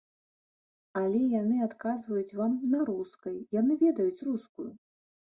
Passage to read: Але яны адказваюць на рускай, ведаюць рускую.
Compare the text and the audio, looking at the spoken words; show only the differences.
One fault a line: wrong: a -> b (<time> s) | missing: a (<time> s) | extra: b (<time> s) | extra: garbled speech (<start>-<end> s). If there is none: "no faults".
extra: вам (2.4 s)
extra: яны (3.6 s)